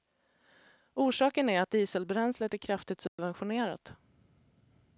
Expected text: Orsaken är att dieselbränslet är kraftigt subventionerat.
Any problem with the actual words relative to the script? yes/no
no